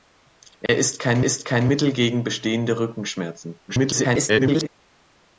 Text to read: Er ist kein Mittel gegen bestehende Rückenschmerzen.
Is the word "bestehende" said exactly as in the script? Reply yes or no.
yes